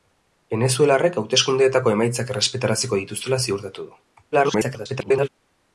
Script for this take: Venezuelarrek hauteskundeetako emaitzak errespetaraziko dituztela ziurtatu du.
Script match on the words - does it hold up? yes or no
no